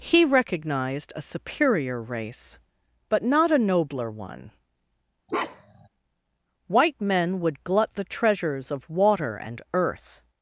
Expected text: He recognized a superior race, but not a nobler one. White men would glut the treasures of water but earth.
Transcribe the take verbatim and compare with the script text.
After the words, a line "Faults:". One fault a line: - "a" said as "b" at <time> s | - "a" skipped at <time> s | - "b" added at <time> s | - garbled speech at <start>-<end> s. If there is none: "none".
He recognized a superior race, but not a nobler one. White men would glut the treasures of water and earth.
Faults:
- "but" said as "and" at 9.4 s